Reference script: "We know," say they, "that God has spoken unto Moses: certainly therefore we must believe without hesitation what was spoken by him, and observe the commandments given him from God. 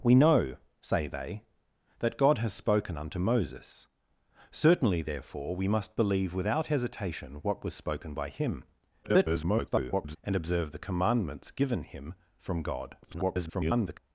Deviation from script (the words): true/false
true